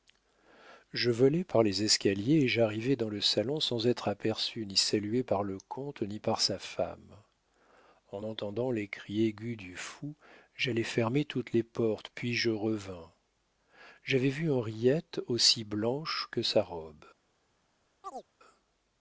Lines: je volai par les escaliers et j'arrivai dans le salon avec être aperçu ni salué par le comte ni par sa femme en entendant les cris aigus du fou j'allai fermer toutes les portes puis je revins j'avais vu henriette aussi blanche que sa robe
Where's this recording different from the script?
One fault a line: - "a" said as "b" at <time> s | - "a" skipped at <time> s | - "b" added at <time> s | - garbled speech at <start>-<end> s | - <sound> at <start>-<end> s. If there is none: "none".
- "avec" said as "sans" at 3.6 s
- chirp at 18.0-18.3 s